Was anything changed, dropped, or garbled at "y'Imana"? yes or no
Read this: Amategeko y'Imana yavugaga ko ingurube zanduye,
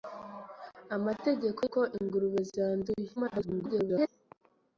yes